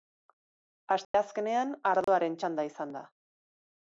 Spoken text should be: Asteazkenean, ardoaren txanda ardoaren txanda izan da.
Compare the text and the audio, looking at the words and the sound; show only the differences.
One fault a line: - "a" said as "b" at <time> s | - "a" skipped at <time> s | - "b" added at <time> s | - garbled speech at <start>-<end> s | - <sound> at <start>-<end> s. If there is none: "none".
- dropout at 1.0-1.1 s
- dropout at 2.0-2.1 s
- "ardoaren txanda" skipped at 2.7 s